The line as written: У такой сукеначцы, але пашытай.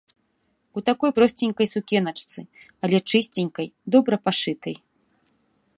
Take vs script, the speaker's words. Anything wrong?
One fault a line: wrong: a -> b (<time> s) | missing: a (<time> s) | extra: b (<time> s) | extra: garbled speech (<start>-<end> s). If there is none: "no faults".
extra: просценькай (1.2 s)
extra: чысценькай добра (3.1 s)